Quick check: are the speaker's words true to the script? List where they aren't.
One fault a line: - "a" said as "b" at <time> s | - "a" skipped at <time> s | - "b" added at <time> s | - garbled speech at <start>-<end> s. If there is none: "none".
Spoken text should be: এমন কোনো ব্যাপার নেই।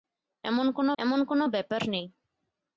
- "এমন কোনো" added at 1.0 s